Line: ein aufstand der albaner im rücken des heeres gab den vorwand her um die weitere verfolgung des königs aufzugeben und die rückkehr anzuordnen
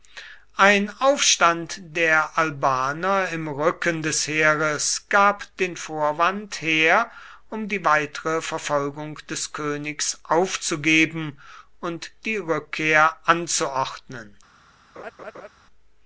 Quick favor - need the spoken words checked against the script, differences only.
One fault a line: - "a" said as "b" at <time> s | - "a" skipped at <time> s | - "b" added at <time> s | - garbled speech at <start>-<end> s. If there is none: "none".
none